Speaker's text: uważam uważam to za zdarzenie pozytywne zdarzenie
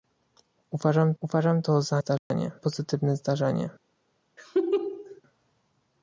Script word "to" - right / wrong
right